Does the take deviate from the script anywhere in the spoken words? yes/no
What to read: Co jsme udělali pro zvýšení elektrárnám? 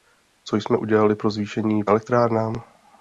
no